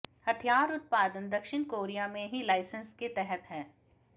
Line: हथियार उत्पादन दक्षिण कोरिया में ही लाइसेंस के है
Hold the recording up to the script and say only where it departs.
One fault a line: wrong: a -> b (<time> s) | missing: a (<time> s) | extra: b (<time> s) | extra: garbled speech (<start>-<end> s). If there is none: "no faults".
extra: तहत (3.1 s)